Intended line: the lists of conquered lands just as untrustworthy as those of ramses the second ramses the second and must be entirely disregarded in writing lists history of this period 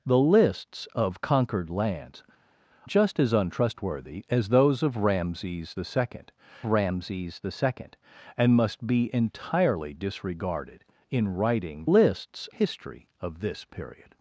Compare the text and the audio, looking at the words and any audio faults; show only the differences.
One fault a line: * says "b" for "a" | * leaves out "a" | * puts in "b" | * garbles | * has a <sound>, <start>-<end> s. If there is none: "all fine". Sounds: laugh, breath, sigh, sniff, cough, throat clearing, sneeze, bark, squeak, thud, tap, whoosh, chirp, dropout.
all fine